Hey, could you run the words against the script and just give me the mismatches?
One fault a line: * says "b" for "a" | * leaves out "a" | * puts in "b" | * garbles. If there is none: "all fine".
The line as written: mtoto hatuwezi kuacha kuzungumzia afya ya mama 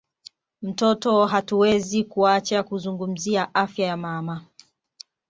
all fine